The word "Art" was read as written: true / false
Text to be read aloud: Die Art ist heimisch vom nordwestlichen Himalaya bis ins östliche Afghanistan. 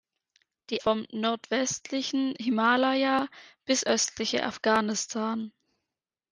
false